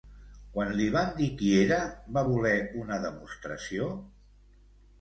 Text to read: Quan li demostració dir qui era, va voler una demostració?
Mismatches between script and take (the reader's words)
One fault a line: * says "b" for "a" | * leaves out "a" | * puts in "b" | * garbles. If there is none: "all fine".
* says "van" for "demostració"